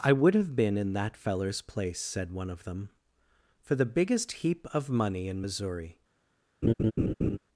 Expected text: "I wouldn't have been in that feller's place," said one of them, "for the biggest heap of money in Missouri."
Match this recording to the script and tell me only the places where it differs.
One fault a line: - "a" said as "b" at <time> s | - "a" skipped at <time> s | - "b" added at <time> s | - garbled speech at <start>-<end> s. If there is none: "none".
- "wouldn't" said as "would" at 0.1 s